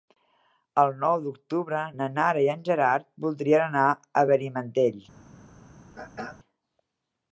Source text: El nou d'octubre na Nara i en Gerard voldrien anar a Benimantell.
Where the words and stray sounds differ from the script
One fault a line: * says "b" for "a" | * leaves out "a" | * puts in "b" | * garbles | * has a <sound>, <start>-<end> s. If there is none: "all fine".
* has a throat clearing, 5.9-6.4 s